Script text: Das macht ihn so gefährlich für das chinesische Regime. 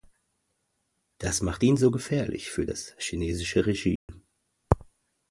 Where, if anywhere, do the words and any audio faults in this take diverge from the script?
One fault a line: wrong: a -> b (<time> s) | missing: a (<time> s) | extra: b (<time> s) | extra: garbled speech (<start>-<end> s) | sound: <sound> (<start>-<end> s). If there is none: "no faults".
sound: dropout (4.0-4.1 s)